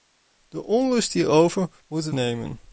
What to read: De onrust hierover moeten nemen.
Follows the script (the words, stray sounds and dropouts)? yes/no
yes